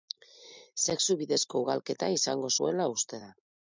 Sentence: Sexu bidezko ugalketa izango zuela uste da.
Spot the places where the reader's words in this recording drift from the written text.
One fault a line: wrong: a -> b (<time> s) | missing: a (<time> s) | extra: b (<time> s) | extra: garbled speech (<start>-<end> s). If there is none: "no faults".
no faults